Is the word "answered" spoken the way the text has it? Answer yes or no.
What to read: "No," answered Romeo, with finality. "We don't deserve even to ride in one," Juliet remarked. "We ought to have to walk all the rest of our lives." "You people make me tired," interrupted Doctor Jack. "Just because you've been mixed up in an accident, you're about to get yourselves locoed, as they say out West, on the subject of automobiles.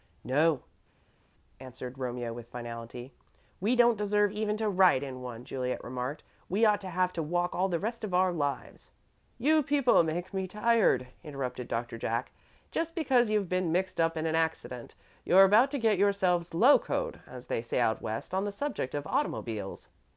yes